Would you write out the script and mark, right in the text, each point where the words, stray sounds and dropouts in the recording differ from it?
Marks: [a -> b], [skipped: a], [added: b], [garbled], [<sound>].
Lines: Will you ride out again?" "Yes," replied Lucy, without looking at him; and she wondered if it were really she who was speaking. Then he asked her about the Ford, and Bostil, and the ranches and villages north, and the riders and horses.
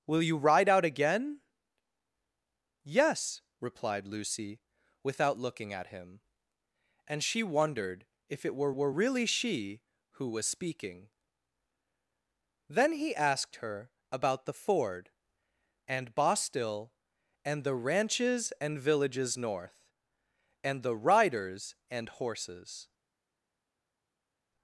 Will you ride out again?" "Yes," replied Lucy, without looking at him; and she wondered if it were [added: were] really she who was speaking. Then he asked her about the Ford, and Bostil, and the ranches and villages north, and the riders and horses.